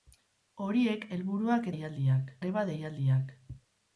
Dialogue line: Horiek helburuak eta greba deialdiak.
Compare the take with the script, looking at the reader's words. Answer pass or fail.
fail